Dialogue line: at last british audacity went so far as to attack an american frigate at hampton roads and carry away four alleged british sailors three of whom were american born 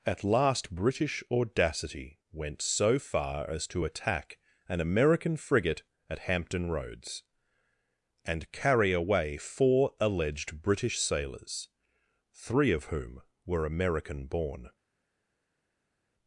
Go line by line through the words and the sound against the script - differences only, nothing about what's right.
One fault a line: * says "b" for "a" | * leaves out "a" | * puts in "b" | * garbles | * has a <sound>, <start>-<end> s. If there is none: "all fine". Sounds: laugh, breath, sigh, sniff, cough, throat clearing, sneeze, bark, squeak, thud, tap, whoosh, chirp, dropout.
all fine